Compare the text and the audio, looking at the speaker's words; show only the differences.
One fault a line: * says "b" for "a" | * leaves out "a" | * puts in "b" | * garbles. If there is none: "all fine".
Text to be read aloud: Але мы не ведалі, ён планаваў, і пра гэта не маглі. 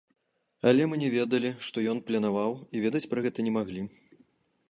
* puts in "што"
* puts in "ведаць"